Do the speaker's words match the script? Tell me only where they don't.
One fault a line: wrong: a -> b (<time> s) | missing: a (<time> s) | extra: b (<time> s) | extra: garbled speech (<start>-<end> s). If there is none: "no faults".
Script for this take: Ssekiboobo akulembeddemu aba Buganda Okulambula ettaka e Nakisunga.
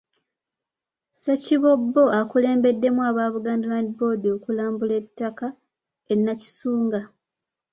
extra: Land Board (3.7 s)